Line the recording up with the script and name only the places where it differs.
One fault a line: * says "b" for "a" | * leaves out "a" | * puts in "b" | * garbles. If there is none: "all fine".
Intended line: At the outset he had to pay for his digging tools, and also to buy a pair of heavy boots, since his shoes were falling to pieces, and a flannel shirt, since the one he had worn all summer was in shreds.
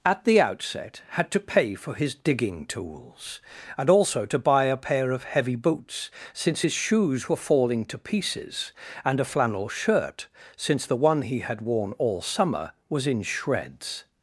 * leaves out "he"